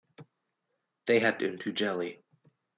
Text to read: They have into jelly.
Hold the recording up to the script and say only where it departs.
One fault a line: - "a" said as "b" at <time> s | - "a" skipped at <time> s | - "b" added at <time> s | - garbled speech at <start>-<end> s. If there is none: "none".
none